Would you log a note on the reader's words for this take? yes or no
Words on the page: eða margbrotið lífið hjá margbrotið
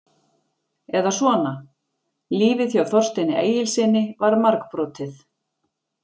yes